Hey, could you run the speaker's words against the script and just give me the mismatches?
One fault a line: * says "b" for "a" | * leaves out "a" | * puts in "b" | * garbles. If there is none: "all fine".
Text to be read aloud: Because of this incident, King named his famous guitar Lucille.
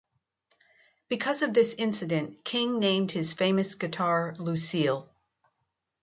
all fine